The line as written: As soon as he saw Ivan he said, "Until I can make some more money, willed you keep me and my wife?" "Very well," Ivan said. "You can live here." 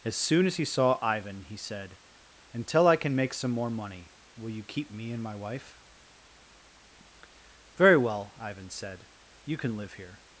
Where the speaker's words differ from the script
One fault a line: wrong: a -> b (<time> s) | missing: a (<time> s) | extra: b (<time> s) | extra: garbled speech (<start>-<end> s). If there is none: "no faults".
wrong: willed -> will (4.3 s)